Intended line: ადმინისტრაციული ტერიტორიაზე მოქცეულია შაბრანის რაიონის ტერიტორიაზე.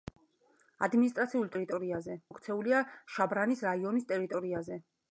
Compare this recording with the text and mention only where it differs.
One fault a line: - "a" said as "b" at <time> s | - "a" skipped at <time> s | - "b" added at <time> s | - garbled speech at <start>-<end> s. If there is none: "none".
none